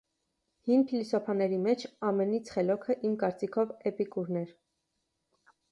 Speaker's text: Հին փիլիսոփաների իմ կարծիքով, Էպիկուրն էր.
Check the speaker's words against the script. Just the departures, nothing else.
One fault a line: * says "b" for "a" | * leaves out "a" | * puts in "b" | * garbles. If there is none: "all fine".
* puts in "մեջ ամենից խելոքը"